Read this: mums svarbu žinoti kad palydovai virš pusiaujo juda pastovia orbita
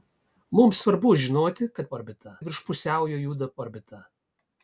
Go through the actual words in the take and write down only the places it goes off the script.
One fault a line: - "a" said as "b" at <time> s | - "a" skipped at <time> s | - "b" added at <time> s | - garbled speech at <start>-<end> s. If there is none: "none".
- "palydovai" said as "orbita" at 2.0 s
- "pastovia" skipped at 3.5 s